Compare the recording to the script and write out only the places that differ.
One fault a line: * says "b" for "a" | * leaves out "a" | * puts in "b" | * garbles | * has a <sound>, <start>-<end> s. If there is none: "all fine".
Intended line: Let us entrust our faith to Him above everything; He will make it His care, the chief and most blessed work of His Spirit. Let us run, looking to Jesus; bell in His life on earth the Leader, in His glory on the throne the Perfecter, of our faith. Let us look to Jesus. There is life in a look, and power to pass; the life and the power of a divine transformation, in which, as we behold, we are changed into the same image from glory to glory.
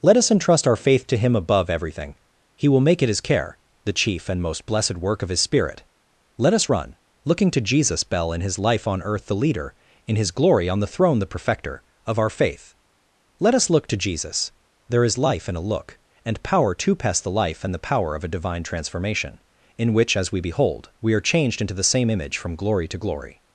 all fine